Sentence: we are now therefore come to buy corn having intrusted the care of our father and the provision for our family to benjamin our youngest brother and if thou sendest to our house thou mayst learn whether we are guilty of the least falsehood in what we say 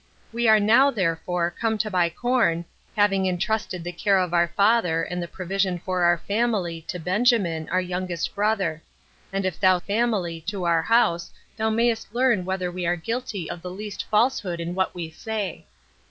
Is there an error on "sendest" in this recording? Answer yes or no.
yes